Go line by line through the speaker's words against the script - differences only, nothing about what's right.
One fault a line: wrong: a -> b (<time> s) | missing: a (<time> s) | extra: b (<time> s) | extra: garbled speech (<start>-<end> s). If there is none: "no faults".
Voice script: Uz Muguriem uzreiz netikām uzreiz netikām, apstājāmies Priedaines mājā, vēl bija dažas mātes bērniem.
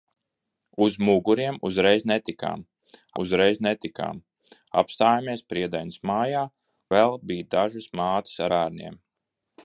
no faults